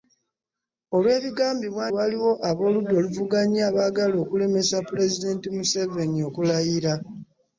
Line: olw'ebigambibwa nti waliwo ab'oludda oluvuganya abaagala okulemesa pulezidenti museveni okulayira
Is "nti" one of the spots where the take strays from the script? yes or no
yes